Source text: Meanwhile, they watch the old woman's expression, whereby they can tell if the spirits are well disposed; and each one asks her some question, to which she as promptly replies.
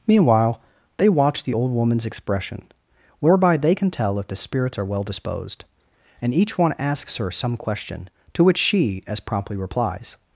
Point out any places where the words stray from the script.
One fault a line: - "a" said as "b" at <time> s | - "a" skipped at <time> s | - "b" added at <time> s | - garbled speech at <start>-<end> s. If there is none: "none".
none